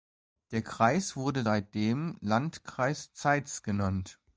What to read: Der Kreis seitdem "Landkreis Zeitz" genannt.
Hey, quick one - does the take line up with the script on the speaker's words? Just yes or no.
no